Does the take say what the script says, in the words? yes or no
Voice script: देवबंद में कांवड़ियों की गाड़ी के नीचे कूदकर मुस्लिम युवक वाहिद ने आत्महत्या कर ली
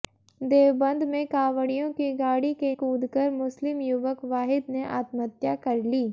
no